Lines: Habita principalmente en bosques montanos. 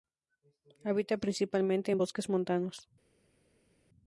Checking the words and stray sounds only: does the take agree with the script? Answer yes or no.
yes